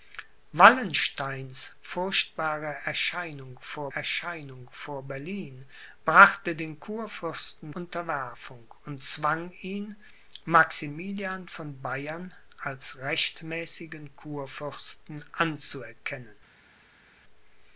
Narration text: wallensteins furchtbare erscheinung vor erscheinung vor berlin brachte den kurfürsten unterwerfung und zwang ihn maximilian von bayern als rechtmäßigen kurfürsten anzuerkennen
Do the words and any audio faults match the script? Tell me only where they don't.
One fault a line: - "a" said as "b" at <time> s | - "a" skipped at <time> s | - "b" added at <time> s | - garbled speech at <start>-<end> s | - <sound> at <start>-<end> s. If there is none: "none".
none